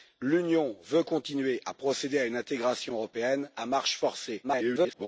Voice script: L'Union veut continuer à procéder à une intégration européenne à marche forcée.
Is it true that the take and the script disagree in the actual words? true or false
true